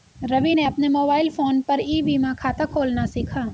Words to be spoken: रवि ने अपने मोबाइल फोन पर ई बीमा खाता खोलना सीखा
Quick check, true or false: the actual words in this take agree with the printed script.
true